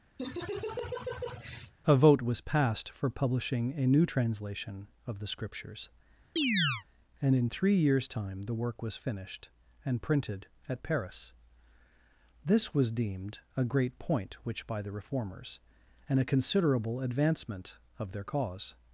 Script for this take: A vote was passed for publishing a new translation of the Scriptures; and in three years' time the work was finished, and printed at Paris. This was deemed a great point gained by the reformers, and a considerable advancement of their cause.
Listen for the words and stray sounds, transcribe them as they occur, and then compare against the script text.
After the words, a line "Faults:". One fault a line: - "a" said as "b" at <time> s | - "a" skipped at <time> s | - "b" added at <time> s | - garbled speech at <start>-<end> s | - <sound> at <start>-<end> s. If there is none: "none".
A vote was passed for publishing a new translation of the Scriptures; and in three years' time the work was finished, and printed at Paris. This was deemed a great point which by the reformers, and a considerable advancement of their cause.
Faults:
- laugh at 0.2-1.7 s
- chirp at 6.4-6.8 s
- "gained" said as "which" at 14.4 s